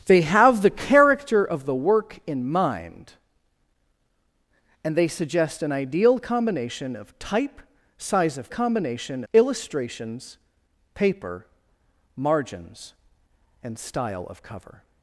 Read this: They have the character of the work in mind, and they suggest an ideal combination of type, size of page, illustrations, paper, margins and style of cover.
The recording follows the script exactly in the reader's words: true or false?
false